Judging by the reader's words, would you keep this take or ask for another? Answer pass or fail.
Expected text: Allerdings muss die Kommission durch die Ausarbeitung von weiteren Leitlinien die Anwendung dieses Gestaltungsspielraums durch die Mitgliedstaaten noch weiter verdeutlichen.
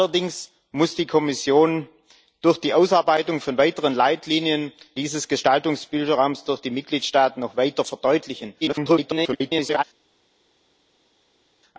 fail